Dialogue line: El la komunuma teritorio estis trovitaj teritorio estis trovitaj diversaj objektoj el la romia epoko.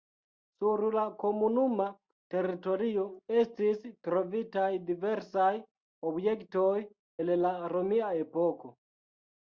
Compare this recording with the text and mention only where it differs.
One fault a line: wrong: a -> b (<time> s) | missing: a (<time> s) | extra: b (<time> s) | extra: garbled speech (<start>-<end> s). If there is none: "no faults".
wrong: El -> Sur (0.6 s)
missing: teritorio estis trovitaj (4.7 s)